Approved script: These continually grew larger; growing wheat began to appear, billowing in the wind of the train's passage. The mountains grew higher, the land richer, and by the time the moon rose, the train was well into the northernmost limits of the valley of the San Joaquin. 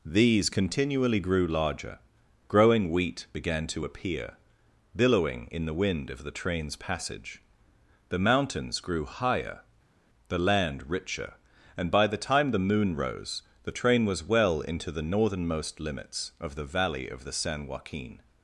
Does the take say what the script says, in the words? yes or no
yes